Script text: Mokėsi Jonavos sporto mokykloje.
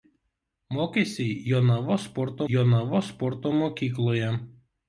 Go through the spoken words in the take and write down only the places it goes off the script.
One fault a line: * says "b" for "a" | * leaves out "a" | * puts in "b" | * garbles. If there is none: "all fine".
* puts in "Jonavos sporto"